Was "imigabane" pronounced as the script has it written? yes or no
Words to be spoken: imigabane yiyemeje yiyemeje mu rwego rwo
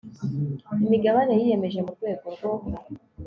yes